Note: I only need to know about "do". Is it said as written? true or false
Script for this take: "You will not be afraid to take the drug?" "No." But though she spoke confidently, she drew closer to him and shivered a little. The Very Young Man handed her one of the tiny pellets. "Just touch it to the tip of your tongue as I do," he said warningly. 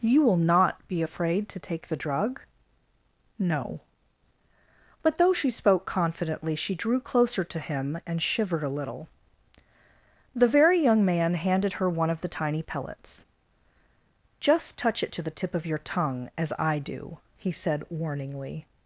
true